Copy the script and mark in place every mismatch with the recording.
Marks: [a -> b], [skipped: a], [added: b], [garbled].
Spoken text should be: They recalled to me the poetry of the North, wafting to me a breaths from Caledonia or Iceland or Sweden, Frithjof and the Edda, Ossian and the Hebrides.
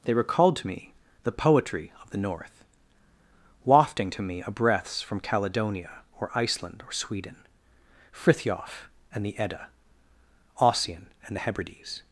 They recalled to me the poetry of the North, wafting to me a breaths from Caledonia or Iceland or Sweden, Frithjof and the Edda, Ossian and the Hebrides.